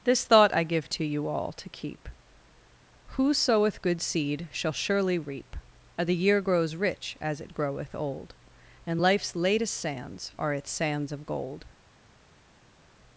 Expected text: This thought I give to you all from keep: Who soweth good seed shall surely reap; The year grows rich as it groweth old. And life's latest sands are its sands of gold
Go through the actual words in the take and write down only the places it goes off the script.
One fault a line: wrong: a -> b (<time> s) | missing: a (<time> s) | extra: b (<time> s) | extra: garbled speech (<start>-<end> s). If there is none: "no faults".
wrong: from -> to (1.5 s)